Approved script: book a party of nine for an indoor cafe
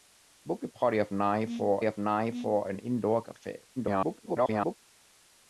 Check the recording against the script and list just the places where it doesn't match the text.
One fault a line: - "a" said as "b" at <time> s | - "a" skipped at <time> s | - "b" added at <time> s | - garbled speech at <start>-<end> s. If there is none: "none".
- "of nine for" added at 1.8 s
- garbled speech at 3.8-4.8 s